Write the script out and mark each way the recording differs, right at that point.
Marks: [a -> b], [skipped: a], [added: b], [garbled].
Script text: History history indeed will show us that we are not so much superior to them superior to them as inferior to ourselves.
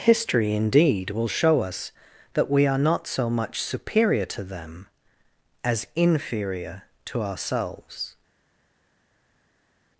History [skipped: history] indeed will show us that we are not so much superior to them [skipped: superior to them] as inferior to ourselves.